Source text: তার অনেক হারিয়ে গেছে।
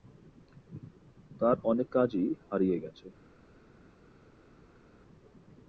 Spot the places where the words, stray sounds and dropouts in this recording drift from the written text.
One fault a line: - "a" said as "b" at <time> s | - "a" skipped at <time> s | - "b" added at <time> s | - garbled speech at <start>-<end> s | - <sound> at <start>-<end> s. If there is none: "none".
- "কাজই" added at 1.9 s